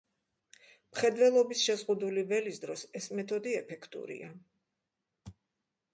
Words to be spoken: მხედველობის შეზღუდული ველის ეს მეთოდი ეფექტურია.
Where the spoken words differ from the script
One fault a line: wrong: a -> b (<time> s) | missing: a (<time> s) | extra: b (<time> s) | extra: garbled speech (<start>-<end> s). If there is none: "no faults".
extra: დროს (2.6 s)